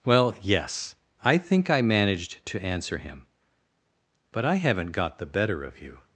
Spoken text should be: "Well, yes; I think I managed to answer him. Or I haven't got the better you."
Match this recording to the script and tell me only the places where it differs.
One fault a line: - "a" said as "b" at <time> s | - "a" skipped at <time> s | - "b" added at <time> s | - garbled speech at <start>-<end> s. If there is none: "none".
- "Or" said as "But" at 4.3 s
- "of" added at 5.6 s